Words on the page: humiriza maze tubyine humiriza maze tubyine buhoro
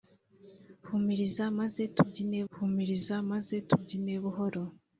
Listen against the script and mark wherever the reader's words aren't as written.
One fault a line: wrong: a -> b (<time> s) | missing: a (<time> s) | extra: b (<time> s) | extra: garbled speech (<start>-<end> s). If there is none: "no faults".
no faults